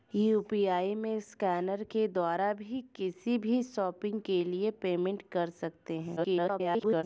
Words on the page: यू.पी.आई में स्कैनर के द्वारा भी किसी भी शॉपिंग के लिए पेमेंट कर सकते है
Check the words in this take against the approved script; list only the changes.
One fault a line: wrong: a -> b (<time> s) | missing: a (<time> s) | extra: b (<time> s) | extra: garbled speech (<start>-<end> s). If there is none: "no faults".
extra: garbled speech (6.2-7.0 s)